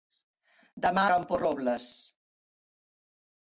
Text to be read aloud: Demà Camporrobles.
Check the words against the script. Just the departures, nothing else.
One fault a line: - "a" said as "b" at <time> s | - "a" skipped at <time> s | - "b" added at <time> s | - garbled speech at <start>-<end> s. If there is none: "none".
none